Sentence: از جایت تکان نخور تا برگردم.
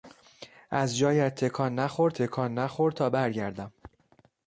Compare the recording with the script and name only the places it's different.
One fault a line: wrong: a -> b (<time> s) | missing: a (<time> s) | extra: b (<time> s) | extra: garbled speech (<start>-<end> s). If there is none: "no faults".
extra: تکان نخور (2.1 s)